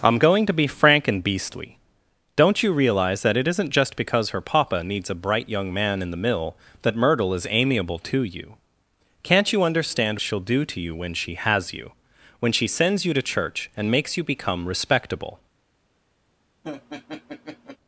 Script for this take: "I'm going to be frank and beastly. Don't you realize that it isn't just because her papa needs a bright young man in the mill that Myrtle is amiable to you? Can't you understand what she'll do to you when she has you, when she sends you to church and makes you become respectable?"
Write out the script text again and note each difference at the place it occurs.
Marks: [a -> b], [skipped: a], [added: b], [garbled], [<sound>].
"I'm going to be frank and beastly. Don't you realize that it isn't just because her papa needs a bright young man in the mill that Myrtle is amiable to you? Can't you understand [skipped: what] she'll do to you when she has you, when she sends you to church and makes you become respectable?" [laugh]